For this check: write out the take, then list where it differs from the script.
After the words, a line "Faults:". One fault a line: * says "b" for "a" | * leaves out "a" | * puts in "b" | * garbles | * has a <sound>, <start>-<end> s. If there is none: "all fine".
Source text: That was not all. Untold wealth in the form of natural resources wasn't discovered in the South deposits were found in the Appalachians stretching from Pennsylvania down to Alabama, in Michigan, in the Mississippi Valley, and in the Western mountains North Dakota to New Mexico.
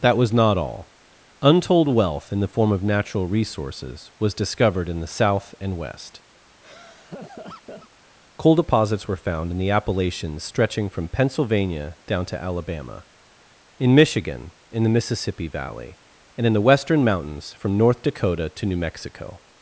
That was not all. Untold wealth in the form of natural resources was discovered in the South and West. Coal deposits were found in the Appalachians stretching from Pennsylvania down to Alabama, in Michigan, in the Mississippi Valley, and in the Western mountains from North Dakota to New Mexico.
Faults:
* says "was" for "wasn't"
* puts in "and West Coal"
* has a laugh, 6.6-7.9 s
* puts in "from"